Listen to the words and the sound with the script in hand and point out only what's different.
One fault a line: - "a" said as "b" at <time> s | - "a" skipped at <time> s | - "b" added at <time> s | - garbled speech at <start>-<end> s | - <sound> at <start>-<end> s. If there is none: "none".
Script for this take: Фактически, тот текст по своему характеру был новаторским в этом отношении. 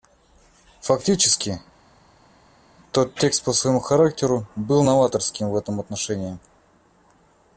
none